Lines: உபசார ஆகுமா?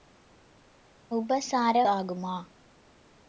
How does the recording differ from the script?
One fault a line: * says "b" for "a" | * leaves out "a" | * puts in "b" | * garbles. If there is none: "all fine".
all fine